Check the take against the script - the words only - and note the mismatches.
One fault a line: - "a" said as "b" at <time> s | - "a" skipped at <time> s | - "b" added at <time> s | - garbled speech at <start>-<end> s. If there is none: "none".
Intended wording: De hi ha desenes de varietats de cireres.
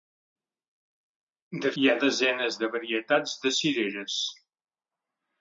none